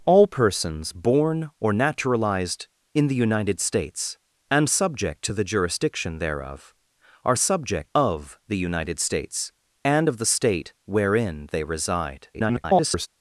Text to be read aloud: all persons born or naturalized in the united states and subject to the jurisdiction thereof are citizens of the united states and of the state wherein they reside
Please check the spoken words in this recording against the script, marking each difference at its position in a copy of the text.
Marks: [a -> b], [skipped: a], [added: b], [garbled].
all persons born or naturalized in the united states and subject to the jurisdiction thereof are [citizens -> subject] of the united states and of the state wherein they reside [garbled]